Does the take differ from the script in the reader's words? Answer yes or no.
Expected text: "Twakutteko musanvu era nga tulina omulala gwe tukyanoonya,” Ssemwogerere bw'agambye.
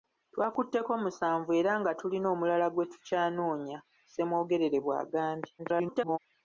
yes